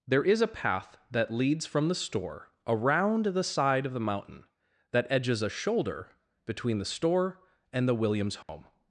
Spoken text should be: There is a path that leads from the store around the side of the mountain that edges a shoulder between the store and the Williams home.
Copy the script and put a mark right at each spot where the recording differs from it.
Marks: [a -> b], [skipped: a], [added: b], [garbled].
There is a path that leads from the store around the side of the mountain that edges a shoulder between the store and the Williams home.